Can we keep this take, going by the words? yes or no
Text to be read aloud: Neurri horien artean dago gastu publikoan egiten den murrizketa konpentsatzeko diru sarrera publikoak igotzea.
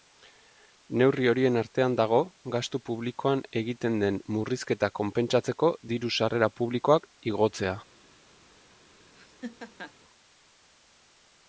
yes